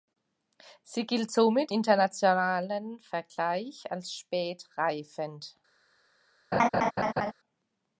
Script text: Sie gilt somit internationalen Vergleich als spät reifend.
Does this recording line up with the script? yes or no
yes